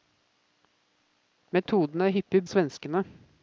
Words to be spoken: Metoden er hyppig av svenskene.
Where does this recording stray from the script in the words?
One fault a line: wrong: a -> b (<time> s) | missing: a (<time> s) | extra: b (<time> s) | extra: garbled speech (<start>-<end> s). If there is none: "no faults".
no faults